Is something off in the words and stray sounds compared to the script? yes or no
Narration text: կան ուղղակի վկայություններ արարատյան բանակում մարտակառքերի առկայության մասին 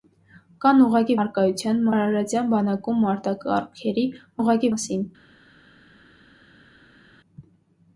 yes